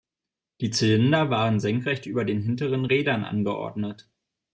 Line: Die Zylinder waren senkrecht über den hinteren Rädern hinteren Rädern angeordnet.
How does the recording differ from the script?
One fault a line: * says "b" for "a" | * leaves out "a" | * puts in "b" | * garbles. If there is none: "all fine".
* leaves out "hinteren Rädern"